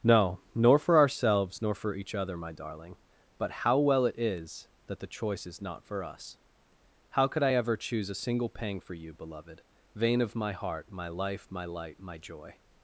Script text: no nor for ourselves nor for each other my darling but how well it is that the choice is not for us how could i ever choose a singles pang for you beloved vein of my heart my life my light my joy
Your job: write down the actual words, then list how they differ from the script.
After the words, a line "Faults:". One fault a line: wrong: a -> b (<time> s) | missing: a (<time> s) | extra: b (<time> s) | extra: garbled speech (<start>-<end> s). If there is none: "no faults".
no nor for ourselves nor for each other my darling but how well it is that the choice is not for us how could i ever choose a single pang for you beloved vein of my heart my life my light my joy
Faults:
wrong: singles -> single (8.1 s)